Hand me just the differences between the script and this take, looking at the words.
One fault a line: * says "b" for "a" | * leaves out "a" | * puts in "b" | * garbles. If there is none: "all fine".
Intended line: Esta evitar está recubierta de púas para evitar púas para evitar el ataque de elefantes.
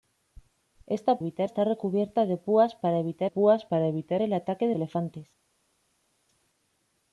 all fine